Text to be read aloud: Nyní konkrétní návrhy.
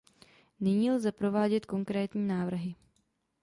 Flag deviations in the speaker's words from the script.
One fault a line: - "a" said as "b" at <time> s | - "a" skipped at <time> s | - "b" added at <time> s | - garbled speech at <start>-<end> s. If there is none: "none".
- "lze provádět" added at 0.9 s